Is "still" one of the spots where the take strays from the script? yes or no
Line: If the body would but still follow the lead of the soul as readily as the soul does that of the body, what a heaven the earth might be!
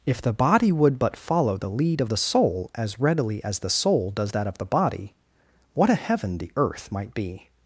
yes